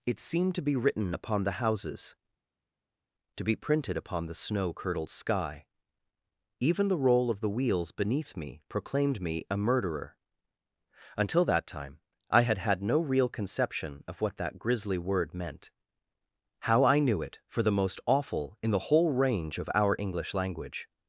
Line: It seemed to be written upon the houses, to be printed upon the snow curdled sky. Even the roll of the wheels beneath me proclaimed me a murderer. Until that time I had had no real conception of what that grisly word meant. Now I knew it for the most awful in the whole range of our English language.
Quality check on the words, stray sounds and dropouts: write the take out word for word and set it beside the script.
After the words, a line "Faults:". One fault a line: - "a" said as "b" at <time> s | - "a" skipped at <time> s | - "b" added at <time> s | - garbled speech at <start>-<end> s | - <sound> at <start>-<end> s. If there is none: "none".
It seemed to be written upon the houses, to be printed upon the snow curdled sky. Even the roll of the wheels beneath me proclaimed me a murderer. Until that time I had had no real conception of what that grisly word meant. How I knew it for the most awful in the whole range of our English language.
Faults:
- "Now" said as "How" at 16.6 s